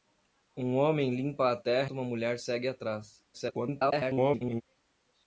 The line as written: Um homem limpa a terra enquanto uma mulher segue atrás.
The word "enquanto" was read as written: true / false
false